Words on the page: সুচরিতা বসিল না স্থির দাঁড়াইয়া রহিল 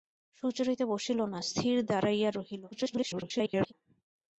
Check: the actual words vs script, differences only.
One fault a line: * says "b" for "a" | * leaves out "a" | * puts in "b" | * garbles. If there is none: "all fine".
* garbles